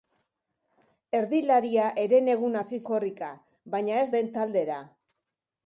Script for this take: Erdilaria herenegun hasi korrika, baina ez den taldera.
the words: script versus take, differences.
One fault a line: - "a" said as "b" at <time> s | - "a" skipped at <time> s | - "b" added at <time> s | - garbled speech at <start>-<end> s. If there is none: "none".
none